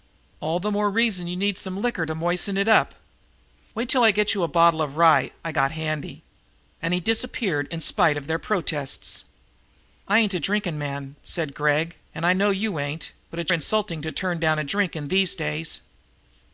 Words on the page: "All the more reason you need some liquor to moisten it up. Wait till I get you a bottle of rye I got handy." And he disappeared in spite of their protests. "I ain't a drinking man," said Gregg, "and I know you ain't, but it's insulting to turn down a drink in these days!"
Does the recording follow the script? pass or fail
pass